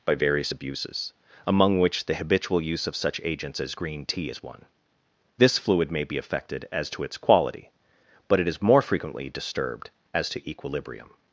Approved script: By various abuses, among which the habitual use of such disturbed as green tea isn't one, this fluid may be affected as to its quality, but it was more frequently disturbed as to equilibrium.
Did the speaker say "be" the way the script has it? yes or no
yes